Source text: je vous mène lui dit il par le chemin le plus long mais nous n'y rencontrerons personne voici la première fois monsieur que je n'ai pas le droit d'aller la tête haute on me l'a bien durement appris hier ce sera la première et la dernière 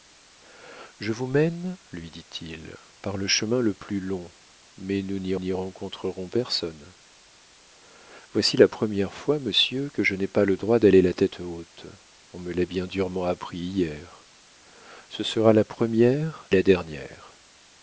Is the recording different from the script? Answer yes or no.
yes